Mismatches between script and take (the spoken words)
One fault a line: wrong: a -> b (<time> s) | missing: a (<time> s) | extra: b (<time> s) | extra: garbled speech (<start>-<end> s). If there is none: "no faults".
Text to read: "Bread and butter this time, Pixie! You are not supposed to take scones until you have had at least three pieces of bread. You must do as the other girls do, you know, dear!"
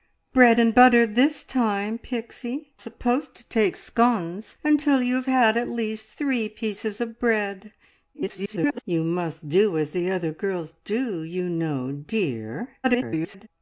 missing: You are not (2.7 s)
extra: garbled speech (8.1-8.8 s)
extra: garbled speech (12.8-13.5 s)